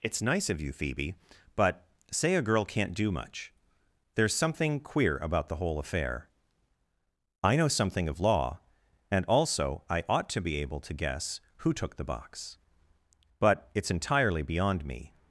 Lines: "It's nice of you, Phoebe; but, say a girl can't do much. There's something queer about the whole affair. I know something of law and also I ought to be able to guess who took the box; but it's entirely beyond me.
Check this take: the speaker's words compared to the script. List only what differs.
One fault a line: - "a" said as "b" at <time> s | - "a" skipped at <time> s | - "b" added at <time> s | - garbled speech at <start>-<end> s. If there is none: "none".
none